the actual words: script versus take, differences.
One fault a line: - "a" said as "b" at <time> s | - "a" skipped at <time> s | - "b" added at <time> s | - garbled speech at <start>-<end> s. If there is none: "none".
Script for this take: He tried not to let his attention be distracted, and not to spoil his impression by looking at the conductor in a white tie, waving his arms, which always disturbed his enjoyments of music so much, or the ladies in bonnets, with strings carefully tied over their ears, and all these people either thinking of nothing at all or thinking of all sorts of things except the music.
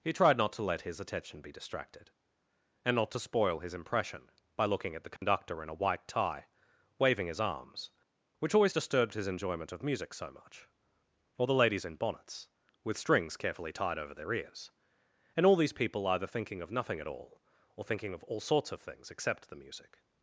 - "enjoyments" said as "enjoyment" at 9.3 s